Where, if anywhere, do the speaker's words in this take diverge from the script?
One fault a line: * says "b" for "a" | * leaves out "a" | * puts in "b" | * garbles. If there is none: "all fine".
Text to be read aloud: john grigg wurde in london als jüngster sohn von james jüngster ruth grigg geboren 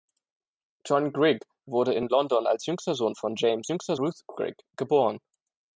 all fine